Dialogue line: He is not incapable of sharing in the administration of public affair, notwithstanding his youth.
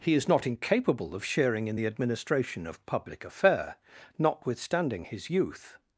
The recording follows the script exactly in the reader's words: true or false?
true